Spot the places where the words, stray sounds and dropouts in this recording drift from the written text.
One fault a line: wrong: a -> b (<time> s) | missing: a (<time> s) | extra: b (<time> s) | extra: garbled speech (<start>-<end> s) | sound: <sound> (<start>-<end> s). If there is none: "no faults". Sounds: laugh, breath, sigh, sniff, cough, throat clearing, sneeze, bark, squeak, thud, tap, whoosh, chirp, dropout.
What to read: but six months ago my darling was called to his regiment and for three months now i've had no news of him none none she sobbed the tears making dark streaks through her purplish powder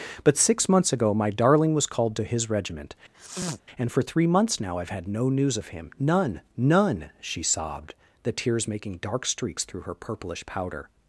sound: sniff (3.1-3.6 s)